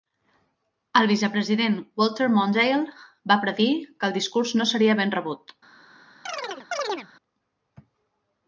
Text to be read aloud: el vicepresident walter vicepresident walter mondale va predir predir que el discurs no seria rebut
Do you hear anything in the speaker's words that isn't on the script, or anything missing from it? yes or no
yes